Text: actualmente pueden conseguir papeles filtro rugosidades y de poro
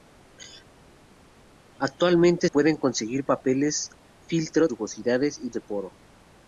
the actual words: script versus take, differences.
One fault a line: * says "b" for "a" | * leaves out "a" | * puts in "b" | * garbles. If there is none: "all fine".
all fine